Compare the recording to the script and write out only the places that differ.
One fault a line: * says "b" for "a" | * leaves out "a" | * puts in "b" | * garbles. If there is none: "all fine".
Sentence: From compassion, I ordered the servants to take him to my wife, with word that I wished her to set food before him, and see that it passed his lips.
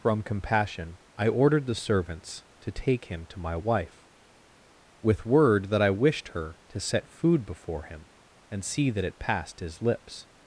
all fine